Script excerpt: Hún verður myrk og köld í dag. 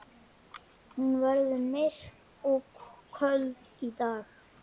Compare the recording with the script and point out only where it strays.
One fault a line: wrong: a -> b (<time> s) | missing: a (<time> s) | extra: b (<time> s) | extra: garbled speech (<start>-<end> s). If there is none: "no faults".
no faults